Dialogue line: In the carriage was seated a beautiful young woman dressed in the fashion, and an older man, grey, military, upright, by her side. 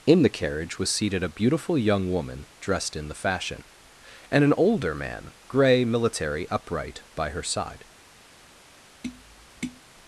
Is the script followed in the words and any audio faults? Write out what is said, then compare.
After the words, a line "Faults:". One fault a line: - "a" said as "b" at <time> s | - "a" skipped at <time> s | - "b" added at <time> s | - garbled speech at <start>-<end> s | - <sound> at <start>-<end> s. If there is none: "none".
In the carriage was seated a beautiful young woman dressed in the fashion, and an older man, grey, military, upright, by her side.
Faults:
- tap at 9.0-9.8 s